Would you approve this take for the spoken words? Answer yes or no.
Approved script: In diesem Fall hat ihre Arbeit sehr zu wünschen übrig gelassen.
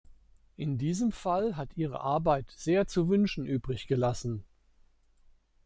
yes